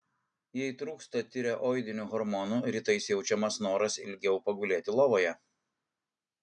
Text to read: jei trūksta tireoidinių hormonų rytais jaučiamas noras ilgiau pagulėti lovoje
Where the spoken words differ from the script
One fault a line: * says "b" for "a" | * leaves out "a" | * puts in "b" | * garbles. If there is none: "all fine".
all fine